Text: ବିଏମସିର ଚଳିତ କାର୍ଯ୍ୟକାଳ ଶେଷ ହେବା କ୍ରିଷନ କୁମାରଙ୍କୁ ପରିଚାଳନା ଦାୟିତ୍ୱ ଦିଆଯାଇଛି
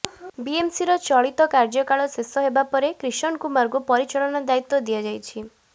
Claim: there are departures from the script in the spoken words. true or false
true